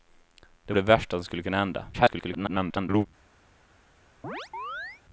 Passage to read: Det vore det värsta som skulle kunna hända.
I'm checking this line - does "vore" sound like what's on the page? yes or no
no